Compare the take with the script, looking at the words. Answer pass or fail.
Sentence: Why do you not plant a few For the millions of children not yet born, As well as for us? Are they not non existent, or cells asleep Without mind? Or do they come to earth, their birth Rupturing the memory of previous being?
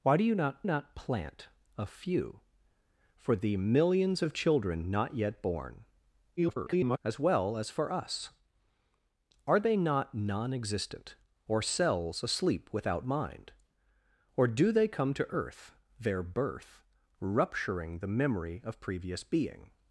fail